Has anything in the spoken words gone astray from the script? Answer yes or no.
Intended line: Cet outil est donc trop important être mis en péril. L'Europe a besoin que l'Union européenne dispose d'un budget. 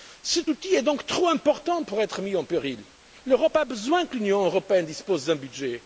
yes